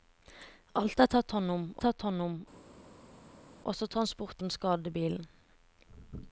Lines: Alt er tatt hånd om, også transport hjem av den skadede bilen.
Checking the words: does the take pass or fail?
fail